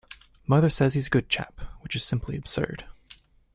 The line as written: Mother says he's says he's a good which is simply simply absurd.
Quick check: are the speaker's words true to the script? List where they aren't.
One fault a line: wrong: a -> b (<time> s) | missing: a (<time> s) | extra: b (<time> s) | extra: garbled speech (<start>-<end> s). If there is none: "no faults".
missing: says he's (1.1 s)
extra: chap (1.3 s)
missing: simply (2.4 s)